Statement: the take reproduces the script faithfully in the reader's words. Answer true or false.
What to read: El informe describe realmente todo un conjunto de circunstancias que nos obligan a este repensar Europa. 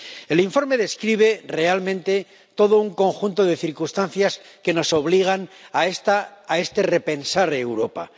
true